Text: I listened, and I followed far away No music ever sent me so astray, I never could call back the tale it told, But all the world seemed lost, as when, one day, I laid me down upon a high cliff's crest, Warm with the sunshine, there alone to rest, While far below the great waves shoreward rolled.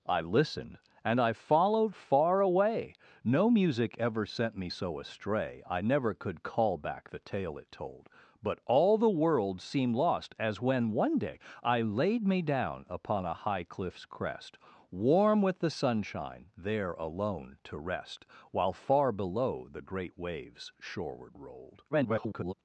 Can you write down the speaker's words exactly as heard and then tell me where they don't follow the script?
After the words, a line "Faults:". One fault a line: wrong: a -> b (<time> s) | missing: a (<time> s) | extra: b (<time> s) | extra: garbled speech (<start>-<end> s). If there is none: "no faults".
I listened, and I followed far away No music ever sent me so astray, I never could call back the tale it told, But all the world seemed lost, as when, one day, I laid me down upon a high cliff's crest, Warm with the sunshine, there alone to rest, While far below the great waves shoreward rolled. [garbled]
Faults:
extra: garbled speech (21.9-22.5 s)